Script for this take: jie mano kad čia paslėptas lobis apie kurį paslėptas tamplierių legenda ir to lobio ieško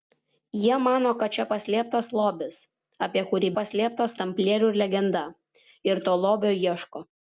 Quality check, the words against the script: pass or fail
pass